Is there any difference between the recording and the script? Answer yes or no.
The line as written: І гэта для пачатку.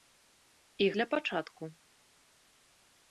yes